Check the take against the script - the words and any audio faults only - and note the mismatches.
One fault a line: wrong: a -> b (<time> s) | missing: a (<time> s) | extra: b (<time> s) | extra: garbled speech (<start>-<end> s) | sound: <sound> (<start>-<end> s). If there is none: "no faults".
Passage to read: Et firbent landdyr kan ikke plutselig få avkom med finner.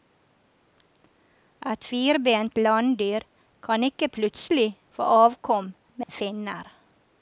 sound: dropout (6.0-6.1 s)